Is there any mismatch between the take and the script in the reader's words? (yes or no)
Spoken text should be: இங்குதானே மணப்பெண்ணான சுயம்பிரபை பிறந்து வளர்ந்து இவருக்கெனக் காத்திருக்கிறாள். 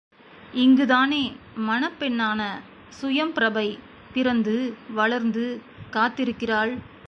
yes